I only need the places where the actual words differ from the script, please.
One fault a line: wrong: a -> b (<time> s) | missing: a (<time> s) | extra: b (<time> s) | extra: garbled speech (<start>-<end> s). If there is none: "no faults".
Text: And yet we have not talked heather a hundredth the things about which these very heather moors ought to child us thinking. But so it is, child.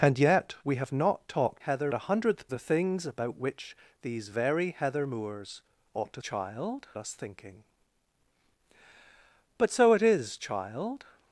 no faults